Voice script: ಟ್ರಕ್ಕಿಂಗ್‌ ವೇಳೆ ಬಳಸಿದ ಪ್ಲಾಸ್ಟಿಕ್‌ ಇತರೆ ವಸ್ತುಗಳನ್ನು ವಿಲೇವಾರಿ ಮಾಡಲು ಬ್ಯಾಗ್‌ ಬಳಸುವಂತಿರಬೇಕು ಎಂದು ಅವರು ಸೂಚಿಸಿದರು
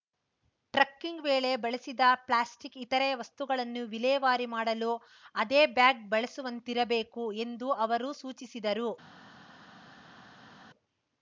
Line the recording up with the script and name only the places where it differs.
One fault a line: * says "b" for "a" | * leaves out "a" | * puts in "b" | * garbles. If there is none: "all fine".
* puts in "ಅದೇ"